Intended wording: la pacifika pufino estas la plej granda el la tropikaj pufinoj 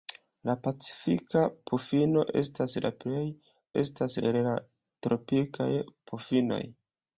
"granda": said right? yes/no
no